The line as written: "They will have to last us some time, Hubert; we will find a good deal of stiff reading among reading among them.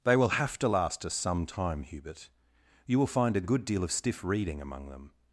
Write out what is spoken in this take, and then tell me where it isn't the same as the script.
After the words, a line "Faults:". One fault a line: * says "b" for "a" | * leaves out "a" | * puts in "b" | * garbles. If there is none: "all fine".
"They will have to last us some time, Hubert; you will find a good deal of stiff reading among them.
Faults:
* says "you" for "we"
* leaves out "reading among"